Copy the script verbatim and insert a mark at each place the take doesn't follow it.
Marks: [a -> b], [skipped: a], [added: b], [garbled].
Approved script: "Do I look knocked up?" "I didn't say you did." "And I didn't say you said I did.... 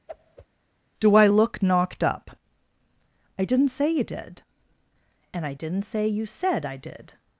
"Do I look knocked up?" "I didn't say you did." "And I didn't say you said I did....